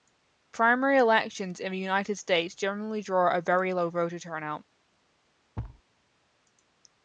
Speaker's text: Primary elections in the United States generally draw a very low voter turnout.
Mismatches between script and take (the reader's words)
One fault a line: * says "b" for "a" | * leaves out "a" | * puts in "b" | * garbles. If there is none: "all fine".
all fine